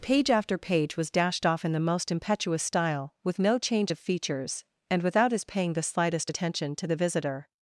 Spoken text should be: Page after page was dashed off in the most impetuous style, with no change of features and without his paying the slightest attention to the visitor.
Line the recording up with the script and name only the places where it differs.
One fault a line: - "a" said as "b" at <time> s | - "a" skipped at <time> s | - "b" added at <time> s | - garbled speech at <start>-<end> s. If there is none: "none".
none